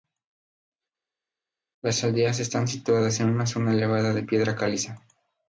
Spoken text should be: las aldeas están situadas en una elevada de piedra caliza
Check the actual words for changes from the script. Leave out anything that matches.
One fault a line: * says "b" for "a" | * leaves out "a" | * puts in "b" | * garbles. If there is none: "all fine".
* puts in "zona"